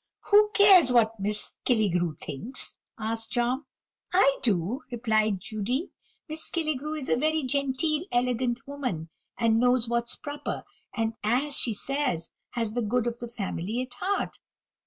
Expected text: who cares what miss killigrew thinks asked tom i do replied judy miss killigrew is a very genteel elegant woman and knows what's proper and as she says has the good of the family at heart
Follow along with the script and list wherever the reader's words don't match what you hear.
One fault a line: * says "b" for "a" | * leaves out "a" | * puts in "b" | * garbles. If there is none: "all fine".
all fine